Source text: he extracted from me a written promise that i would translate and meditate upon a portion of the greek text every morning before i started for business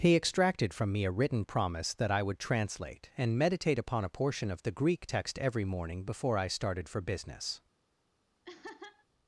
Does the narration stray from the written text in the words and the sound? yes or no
yes